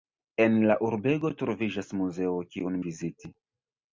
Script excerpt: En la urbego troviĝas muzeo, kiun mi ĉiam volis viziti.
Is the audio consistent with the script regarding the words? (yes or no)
no